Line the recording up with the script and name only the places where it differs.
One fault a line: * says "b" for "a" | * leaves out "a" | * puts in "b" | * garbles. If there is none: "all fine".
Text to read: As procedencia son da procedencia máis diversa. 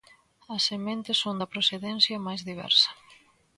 * says "sementes" for "procedencia"